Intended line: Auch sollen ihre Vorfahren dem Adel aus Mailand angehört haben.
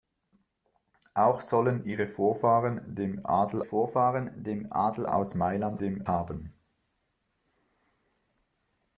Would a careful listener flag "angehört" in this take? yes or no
yes